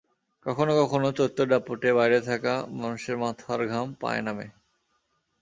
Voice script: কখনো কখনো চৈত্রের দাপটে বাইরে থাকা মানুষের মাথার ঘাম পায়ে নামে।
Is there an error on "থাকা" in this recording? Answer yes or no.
no